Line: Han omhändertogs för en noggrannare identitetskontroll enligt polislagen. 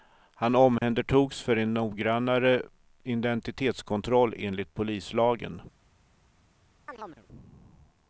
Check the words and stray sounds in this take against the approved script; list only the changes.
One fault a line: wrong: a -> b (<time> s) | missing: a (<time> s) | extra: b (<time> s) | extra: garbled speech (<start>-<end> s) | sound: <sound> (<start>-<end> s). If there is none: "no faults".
sound: dropout (0.8-0.8 s)
sound: chirp (6.9-7.3 s)